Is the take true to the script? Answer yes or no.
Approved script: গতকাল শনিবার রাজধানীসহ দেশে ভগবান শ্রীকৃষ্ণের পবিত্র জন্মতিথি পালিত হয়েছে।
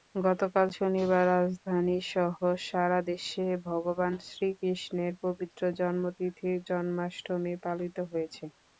no